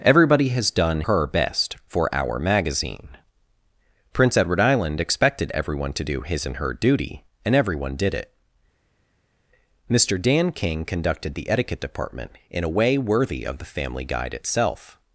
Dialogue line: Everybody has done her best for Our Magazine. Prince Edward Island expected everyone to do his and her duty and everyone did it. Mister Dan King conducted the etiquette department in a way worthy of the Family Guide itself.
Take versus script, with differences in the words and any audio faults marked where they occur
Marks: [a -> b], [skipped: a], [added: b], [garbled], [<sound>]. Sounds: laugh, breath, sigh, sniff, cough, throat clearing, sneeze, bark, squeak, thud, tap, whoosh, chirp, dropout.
Everybody has done her best for Our Magazine. Prince Edward Island expected everyone to do his and her duty and everyone did it. Mister Dan King conducted the etiquette department in a way worthy of the Family Guide itself.